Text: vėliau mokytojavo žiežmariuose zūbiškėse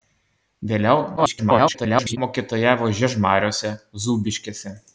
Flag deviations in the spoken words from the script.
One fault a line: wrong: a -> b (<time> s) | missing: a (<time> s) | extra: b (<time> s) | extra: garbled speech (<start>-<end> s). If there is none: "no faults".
extra: garbled speech (1.2-2.2 s)